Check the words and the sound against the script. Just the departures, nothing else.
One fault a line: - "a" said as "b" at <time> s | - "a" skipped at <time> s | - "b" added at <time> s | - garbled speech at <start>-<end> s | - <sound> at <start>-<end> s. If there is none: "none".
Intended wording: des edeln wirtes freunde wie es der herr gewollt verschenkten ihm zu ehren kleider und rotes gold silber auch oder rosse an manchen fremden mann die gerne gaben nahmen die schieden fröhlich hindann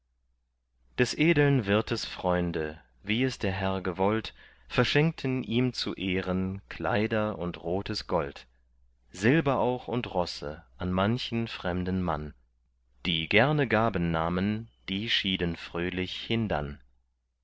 - "oder" said as "und" at 9.9 s